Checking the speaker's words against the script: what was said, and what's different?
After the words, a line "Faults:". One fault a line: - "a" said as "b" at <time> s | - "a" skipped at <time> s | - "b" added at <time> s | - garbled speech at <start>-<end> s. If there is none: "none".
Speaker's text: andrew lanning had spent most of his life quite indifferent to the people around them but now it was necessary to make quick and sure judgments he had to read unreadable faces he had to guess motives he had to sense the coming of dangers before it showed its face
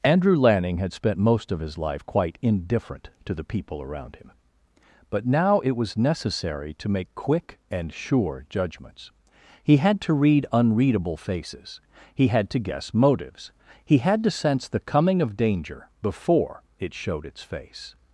andrew lanning had spent most of his life quite indifferent to the people around him but now it was necessary to make quick and sure judgments he had to read unreadable faces he had to guess motives he had to sense the coming of danger before it showed its face
Faults:
- "them" said as "him" at 4.2 s
- "dangers" said as "danger" at 15.4 s